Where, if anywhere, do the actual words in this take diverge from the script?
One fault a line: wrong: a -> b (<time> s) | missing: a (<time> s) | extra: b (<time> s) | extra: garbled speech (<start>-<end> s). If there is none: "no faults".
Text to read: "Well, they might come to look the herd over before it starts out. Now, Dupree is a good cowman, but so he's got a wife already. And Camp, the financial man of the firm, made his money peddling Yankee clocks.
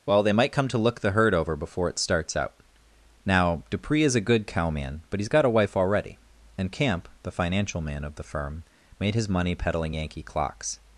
missing: so (5.2 s)